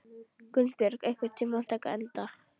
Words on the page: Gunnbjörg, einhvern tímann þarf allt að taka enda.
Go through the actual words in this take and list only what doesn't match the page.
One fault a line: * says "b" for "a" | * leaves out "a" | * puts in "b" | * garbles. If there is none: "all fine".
* leaves out "þarf allt"